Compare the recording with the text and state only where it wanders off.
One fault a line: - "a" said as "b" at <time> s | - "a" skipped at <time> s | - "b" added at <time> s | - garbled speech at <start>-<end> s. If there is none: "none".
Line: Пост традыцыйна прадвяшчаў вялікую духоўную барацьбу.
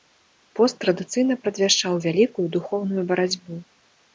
none